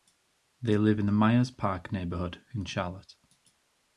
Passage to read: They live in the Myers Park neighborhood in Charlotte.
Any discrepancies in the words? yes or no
no